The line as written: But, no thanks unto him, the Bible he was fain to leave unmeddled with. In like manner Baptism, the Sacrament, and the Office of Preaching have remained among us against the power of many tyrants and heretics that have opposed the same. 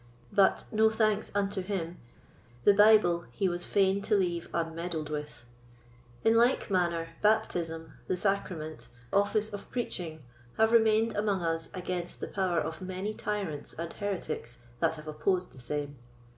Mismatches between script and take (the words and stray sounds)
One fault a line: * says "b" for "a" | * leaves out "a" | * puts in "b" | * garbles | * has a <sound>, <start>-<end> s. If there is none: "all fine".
* leaves out "and the"